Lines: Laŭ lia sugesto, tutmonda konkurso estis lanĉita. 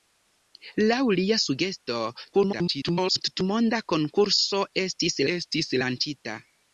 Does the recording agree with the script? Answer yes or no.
no